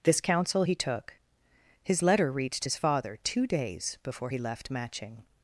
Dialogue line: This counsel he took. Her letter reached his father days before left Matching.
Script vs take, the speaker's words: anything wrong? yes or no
yes